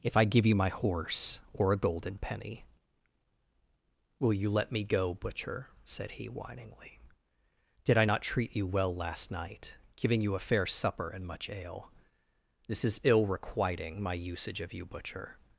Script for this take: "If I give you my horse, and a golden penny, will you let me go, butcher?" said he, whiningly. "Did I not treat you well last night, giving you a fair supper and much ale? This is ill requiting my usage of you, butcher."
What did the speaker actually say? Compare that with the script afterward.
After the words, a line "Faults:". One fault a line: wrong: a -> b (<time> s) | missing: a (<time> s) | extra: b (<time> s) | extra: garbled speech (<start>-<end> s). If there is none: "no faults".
"If I give you my horse, or a golden penny, will you let me go, butcher?" said he, whiningly. "Did I not treat you well last night, giving you a fair supper and much ale? This is ill requiting my usage of you, butcher."
Faults:
wrong: and -> or (1.5 s)